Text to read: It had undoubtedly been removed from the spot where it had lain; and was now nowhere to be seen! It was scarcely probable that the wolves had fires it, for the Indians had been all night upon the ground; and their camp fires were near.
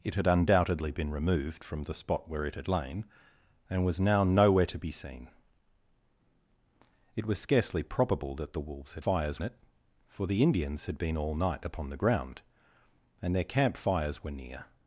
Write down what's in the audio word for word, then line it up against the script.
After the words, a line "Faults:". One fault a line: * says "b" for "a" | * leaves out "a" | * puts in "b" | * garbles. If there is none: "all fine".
It had undoubtedly been removed from the spot where it had lain; and was now nowhere to be seen! It was scarcely probable that the wolves had fires it, for the Indians had been all night upon the ground; and their camp fires were near.
Faults:
all fine